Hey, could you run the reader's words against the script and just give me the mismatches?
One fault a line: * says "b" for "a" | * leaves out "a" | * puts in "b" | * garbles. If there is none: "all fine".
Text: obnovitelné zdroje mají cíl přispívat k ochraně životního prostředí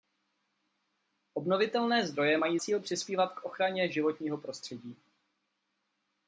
all fine